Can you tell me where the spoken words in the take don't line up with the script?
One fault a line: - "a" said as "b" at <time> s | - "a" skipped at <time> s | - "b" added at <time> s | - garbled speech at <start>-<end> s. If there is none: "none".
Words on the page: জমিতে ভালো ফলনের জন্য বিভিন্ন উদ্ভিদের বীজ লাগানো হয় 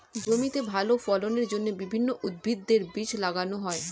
none